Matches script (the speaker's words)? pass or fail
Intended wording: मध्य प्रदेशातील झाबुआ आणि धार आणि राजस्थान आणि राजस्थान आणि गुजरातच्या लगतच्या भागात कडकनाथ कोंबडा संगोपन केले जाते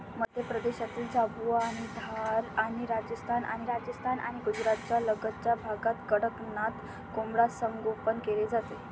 pass